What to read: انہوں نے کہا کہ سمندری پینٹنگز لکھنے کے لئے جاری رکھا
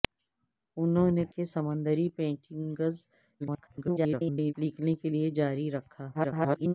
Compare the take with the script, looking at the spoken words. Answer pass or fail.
fail